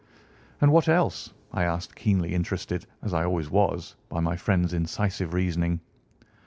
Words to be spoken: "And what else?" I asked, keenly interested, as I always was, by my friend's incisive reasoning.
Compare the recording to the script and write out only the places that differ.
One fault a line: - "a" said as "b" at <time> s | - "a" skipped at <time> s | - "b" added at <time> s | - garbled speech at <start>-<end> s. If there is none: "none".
none